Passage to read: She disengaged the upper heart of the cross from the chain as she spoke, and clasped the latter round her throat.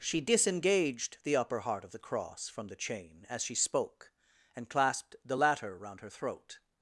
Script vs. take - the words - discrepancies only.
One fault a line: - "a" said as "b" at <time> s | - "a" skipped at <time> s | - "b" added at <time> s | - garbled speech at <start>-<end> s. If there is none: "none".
none